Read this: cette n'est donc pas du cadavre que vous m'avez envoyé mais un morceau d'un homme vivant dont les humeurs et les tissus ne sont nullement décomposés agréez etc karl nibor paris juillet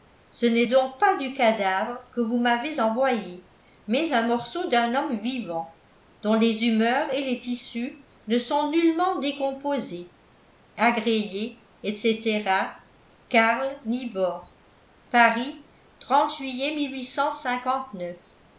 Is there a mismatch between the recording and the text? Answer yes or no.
yes